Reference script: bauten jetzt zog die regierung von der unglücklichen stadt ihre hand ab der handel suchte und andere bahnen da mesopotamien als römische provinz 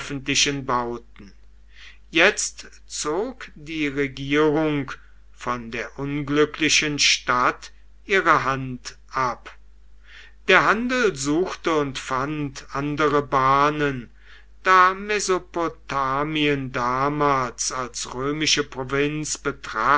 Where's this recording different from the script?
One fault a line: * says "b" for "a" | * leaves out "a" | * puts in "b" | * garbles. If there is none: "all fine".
* puts in "fand"
* puts in "damals"